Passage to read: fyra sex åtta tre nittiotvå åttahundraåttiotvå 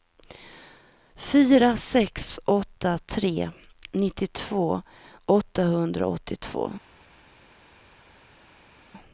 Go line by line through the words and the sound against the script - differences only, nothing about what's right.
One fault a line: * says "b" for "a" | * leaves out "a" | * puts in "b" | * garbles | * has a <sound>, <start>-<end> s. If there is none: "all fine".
all fine